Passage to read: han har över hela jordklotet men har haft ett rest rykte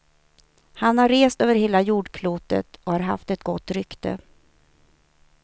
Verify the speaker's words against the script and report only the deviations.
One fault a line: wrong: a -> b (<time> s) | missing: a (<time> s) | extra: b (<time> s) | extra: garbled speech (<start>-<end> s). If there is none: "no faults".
extra: rest (1.1 s)
wrong: men -> och (2.8 s)
wrong: rest -> gott (3.4 s)